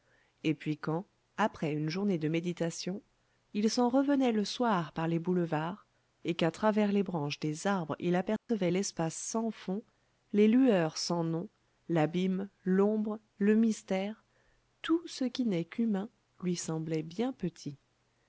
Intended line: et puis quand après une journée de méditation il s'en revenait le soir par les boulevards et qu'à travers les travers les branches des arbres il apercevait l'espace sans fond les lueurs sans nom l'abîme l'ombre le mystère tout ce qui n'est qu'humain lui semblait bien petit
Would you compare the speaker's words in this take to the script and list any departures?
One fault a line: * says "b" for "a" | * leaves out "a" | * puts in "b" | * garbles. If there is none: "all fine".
* leaves out "travers les"